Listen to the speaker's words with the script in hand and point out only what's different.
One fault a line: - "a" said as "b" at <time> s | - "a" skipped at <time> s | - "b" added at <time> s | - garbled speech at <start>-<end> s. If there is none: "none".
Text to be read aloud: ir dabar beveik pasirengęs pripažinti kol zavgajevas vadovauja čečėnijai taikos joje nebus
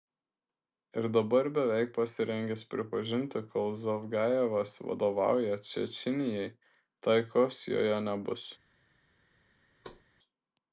none